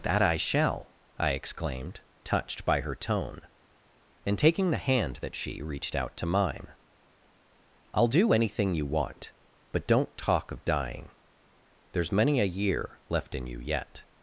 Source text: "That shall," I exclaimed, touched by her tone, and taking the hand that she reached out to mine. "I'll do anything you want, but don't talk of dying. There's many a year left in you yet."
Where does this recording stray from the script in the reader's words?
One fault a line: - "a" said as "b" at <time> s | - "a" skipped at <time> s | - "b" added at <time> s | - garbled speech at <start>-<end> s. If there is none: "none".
- "I" added at 0.2 s